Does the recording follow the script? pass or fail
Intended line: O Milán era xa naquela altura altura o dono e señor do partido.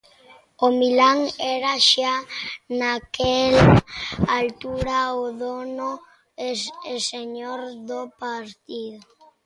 fail